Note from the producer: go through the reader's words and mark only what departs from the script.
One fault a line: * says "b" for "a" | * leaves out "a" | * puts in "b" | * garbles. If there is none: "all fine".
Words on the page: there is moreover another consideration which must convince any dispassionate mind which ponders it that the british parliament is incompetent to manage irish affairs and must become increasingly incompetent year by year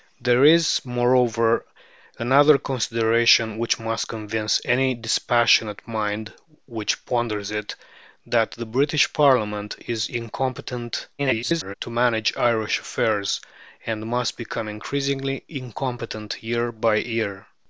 * garbles